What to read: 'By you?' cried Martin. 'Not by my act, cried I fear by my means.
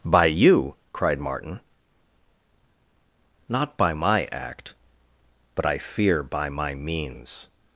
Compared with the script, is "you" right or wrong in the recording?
right